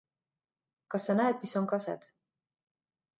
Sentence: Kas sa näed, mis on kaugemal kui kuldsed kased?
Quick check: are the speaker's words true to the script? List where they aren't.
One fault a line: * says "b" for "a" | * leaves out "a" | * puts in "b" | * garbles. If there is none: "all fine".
* leaves out "kaugemal kui kuldsed"